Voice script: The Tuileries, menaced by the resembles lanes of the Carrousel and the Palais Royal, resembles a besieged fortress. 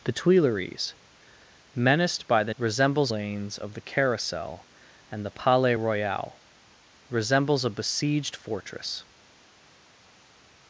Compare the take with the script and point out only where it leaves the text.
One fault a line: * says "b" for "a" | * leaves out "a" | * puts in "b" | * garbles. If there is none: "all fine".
all fine